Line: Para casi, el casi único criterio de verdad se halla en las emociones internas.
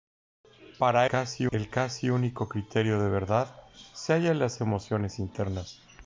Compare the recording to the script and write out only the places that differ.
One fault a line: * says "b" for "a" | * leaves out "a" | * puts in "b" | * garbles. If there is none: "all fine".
all fine